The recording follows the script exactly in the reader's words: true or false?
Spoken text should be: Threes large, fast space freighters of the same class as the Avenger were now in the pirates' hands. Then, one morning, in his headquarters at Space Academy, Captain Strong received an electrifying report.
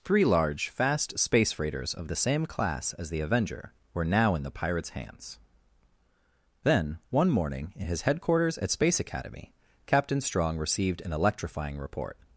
false